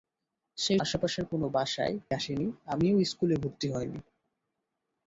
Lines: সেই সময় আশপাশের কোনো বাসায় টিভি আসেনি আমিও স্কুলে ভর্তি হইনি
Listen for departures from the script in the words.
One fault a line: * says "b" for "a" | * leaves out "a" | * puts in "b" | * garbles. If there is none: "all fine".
* leaves out "সময়"
* leaves out "টিভি"